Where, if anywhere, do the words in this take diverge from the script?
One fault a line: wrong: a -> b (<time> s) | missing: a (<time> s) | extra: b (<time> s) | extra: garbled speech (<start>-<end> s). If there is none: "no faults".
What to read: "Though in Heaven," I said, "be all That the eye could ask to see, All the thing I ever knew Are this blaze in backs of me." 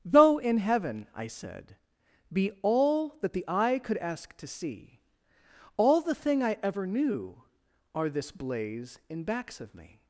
no faults